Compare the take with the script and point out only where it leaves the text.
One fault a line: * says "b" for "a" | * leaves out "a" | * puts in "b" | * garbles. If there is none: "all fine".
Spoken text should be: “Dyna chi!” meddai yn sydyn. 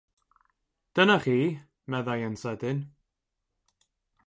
all fine